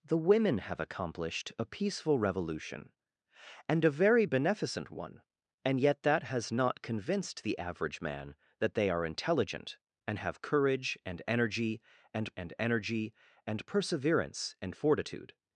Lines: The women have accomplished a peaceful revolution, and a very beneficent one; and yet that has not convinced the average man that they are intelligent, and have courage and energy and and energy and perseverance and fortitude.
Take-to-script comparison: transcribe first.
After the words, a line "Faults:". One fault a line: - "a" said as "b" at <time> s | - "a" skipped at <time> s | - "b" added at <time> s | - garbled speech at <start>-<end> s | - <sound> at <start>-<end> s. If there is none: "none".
The women have accomplished a peaceful revolution, and a very beneficent one; and yet that has not convinced the average man that they are intelligent, and have courage and energy and and energy and perseverance and fortitude.
Faults:
none